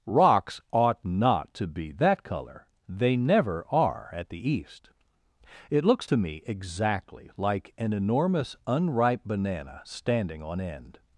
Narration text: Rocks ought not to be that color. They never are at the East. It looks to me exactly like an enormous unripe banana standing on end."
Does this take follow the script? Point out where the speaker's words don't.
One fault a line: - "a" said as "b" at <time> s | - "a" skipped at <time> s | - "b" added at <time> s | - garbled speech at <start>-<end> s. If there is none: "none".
none